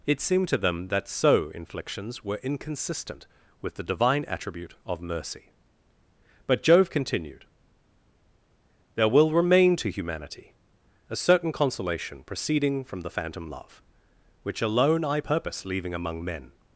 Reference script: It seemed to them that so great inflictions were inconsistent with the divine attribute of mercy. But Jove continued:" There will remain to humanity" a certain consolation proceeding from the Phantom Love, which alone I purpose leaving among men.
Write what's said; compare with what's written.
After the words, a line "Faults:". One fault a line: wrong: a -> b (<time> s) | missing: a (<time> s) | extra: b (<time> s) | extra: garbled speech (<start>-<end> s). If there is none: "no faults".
It seemed to them that so inflictions were inconsistent with the divine attribute of mercy. But Jove continued:" There will remain to humanity" a certain consolation proceeding from the Phantom Love, which alone I purpose leaving among men.
Faults:
missing: great (1.5 s)